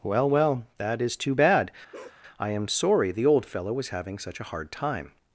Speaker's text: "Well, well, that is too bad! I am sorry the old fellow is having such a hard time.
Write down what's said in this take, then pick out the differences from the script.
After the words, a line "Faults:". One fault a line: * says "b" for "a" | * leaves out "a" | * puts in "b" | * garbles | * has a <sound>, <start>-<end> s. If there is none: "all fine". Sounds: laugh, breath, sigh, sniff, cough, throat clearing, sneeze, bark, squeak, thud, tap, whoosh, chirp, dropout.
"Well, well, that is too bad! I am sorry the old fellow was having such a hard time.
Faults:
* has a bark, 1.9-2.2 s
* says "was" for "is"